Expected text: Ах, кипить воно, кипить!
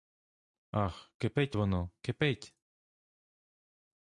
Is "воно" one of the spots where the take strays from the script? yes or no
no